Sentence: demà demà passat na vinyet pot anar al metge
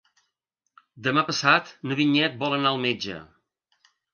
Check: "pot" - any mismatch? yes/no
yes